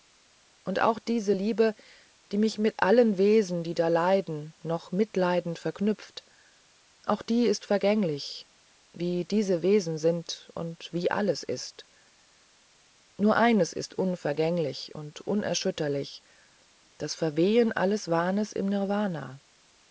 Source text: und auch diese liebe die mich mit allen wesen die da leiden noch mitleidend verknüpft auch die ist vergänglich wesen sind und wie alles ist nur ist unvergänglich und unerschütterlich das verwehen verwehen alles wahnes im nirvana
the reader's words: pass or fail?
fail